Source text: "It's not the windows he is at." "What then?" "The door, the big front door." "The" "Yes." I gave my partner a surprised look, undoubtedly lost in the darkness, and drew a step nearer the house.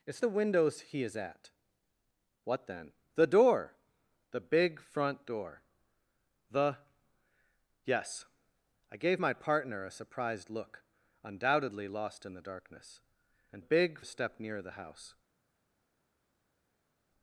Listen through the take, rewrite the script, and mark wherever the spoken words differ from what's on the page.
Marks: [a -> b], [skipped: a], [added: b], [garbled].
"It's [skipped: not] the windows he is at." "What then?" "The door, the big front door." "The" "Yes." I gave my partner a surprised look, undoubtedly lost in the darkness, and [drew -> big] a step nearer the house.